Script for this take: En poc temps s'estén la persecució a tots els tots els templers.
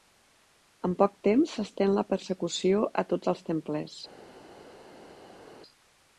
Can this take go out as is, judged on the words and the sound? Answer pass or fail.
fail